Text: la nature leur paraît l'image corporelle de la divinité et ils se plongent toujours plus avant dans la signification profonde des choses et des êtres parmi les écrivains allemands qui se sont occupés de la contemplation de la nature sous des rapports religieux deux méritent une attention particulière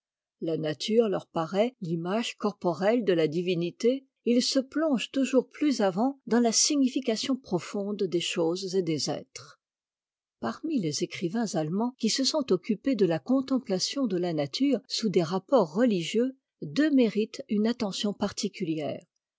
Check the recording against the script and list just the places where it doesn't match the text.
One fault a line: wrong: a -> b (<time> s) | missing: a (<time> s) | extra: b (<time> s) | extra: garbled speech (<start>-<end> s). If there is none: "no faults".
no faults